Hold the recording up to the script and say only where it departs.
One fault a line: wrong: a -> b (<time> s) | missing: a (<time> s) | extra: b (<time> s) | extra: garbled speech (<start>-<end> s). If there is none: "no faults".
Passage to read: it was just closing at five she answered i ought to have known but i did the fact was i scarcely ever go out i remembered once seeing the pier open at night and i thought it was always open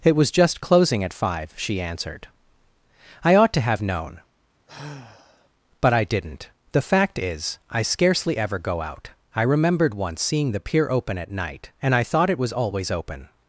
wrong: did -> didn't (6.0 s)
wrong: was -> is (7.2 s)